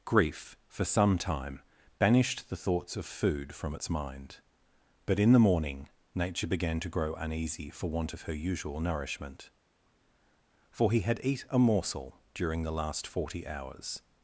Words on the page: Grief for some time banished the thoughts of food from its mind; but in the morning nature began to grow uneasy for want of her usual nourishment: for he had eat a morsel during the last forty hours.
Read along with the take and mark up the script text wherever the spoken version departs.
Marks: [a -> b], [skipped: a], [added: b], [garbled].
Grief for some time banished the thoughts of food from its mind; but in the morning nature began to grow uneasy for want of her usual nourishment: for he had eat a morsel during the last forty hours.